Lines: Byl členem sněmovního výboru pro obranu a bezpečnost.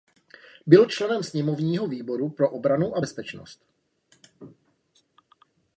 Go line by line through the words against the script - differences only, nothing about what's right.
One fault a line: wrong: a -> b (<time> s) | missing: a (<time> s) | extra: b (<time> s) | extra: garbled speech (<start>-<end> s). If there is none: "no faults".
no faults